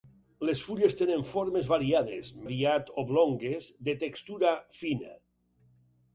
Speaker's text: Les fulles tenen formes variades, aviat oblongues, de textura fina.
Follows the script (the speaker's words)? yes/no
yes